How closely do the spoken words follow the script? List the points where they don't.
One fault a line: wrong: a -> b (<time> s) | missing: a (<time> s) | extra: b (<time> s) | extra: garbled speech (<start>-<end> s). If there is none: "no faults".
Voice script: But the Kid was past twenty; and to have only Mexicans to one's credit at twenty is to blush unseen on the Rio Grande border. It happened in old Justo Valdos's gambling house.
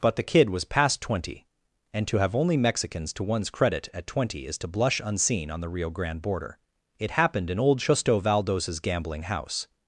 no faults